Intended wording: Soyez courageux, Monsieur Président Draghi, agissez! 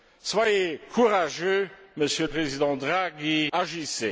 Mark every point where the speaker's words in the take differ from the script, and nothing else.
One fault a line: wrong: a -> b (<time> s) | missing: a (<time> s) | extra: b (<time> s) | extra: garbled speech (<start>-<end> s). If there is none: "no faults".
no faults